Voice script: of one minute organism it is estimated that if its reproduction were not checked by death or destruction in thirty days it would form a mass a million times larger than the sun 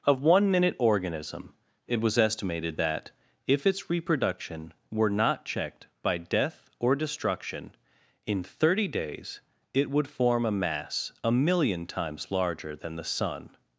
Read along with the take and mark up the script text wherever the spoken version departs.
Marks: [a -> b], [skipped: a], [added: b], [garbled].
of one minute organism it [is -> was] estimated that if its reproduction were not checked by death or destruction in thirty days it would form a mass a million times larger than the sun